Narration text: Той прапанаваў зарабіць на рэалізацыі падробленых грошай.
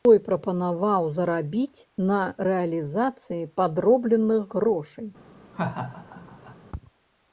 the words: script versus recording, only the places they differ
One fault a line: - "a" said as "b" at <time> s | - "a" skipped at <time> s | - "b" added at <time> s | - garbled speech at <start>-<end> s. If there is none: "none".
none